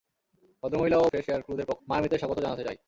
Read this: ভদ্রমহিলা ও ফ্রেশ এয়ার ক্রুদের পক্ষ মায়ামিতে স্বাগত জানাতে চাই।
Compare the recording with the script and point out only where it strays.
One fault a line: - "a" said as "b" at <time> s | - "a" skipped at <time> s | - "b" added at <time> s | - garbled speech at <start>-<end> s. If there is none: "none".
none